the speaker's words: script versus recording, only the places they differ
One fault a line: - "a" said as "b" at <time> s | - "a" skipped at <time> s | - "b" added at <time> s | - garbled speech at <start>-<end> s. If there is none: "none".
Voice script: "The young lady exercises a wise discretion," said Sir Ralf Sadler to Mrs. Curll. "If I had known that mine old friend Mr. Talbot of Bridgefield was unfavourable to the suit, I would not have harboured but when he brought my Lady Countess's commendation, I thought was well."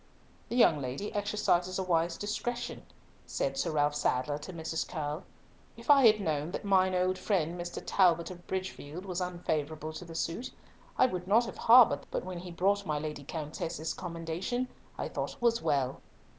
none